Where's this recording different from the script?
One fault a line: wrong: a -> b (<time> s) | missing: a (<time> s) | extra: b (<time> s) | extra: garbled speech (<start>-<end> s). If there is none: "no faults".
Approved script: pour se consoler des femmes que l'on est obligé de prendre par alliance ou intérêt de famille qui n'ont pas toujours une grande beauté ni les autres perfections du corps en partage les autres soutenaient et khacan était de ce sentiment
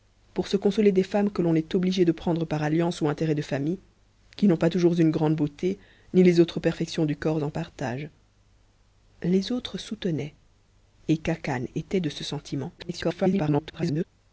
extra: garbled speech (12.8-14.0 s)